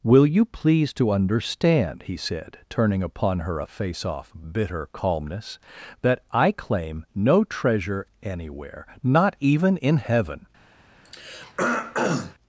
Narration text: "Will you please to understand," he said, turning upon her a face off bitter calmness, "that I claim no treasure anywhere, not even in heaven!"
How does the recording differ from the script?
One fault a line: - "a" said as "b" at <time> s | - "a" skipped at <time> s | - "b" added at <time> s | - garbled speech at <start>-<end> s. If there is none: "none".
none